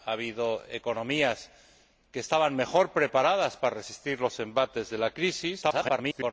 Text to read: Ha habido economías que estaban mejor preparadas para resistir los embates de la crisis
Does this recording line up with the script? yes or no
no